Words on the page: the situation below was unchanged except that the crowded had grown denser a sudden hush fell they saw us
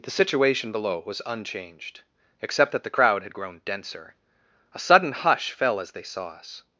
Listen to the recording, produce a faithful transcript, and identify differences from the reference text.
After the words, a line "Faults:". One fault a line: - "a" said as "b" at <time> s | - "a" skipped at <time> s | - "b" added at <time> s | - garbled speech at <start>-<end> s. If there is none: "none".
the situation below was unchanged except that the crowd had grown denser a sudden hush fell as they saw us
Faults:
- "crowded" said as "crowd" at 2.9 s
- "as" added at 5.8 s